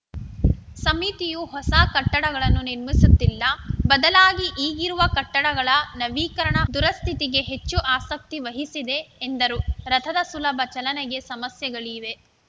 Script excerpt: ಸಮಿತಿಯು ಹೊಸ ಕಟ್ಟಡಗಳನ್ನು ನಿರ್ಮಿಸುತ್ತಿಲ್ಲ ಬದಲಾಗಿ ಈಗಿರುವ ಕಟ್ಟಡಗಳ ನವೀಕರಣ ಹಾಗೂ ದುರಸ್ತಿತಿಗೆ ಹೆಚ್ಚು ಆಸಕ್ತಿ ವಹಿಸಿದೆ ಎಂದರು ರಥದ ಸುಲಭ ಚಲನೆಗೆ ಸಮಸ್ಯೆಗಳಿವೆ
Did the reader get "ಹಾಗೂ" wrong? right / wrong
wrong